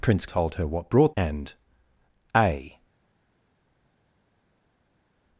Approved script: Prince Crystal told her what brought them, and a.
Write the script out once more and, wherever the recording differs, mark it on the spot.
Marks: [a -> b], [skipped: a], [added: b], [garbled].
Prince [skipped: Crystal] told her what brought [skipped: them,] and a.